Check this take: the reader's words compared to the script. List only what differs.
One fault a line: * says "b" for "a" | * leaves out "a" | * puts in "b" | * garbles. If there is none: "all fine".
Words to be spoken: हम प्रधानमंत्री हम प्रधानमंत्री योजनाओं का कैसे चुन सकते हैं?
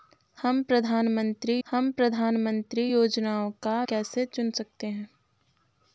all fine